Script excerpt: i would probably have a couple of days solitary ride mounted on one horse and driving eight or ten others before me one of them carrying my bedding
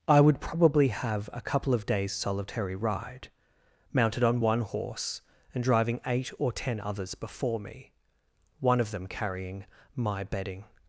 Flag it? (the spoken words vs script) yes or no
no